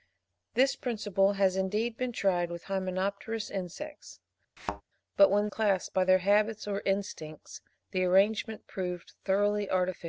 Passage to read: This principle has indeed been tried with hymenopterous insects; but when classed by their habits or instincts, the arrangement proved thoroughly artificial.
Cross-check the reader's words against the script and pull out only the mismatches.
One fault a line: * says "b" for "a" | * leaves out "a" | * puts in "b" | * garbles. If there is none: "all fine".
all fine